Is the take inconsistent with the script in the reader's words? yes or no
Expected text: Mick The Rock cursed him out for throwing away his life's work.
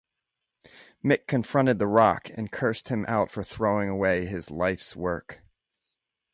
yes